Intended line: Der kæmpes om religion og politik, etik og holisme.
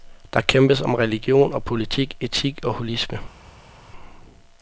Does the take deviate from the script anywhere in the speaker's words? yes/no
no